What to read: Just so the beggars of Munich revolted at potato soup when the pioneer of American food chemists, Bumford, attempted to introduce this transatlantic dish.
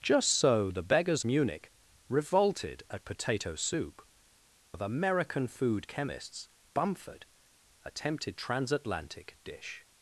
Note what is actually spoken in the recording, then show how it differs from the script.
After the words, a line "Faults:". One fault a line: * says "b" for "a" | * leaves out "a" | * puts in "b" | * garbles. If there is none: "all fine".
Just so the beggars Munich revolted at potato soup of American food chemists, Bumford, attempted transatlantic dish.
Faults:
* leaves out "of"
* leaves out "when the pioneer"
* leaves out "to introduce this"